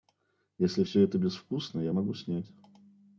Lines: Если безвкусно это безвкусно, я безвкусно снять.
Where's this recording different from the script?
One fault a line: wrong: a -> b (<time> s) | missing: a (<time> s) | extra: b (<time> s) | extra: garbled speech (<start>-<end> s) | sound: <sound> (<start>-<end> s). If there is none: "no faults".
wrong: безвкусно -> все (0.8 s)
wrong: безвкусно -> могу (1.9 s)